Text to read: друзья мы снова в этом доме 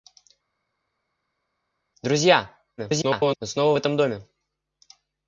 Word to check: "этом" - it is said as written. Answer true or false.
true